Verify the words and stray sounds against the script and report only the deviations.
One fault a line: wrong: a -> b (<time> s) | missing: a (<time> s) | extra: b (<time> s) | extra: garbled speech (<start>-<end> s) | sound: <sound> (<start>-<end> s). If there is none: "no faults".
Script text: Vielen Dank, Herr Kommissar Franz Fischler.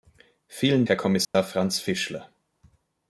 missing: Dank (0.9 s)
sound: dropout (1.2-1.3 s)